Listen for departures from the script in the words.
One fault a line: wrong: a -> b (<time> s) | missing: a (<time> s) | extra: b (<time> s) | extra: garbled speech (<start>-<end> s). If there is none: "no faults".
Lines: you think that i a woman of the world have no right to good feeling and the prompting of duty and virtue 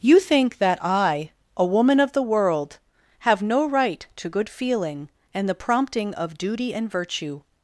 no faults